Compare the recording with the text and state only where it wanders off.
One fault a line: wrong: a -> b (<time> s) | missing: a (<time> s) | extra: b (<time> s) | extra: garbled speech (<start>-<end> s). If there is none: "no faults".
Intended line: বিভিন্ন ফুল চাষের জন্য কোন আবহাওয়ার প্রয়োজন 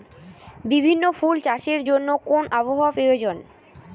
no faults